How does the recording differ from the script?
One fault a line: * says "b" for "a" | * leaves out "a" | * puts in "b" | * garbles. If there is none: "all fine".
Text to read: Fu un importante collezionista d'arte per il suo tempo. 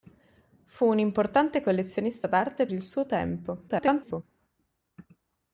* leaves out "per"
* garbles